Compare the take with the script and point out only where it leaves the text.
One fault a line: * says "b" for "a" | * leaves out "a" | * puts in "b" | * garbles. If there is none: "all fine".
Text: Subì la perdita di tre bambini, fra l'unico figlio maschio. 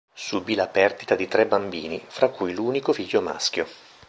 * puts in "cui"